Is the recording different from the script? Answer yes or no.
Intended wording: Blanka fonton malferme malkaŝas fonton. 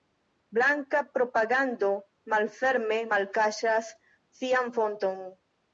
yes